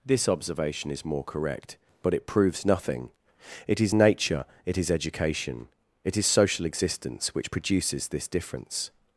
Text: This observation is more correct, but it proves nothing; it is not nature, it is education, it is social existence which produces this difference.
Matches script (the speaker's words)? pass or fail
fail